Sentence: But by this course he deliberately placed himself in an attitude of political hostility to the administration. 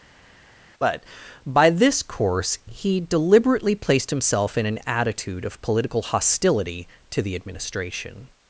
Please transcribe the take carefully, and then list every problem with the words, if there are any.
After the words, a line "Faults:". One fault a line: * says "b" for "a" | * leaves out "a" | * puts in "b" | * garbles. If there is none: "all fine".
But by this course he deliberately placed himself in an attitude of political hostility to the administration.
Faults:
all fine